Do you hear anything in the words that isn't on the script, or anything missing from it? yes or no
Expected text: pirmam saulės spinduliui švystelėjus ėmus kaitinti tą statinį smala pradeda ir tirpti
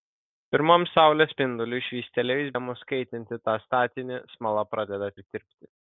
no